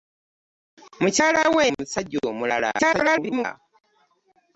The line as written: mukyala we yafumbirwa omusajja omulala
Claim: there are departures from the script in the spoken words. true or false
true